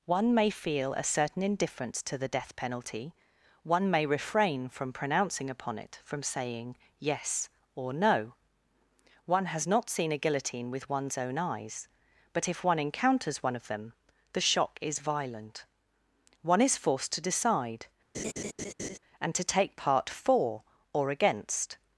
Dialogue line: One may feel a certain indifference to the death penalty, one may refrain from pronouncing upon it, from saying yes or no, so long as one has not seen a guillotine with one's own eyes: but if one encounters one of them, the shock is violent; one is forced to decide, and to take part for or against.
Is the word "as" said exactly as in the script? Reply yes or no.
no